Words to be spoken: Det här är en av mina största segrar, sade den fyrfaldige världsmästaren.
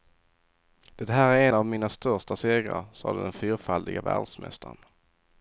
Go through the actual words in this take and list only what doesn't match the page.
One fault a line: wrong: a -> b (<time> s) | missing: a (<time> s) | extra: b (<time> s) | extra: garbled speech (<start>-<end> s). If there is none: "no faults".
no faults